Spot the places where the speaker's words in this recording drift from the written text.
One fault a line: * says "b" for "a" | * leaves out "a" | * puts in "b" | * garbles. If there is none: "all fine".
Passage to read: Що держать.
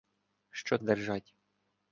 all fine